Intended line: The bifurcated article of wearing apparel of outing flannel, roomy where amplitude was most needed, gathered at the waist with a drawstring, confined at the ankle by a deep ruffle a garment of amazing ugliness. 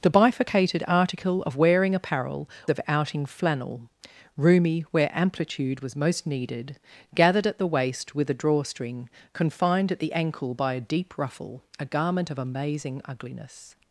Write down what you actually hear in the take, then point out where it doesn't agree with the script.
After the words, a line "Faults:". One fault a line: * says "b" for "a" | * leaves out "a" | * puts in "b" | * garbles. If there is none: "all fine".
The bifurcated article of wearing apparel of outing flannel, roomy where amplitude was most needed, gathered at the waist with a drawstring, confined at the ankle by a deep ruffle a garment of amazing ugliness.
Faults:
all fine